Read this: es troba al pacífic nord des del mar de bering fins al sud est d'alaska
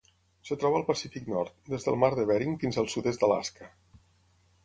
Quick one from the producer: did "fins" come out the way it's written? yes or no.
yes